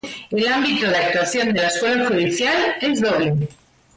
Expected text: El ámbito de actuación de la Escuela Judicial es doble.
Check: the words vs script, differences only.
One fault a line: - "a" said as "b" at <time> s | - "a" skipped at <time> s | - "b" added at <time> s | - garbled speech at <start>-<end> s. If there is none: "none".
none